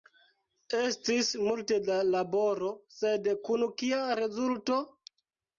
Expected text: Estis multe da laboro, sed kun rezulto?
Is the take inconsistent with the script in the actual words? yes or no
yes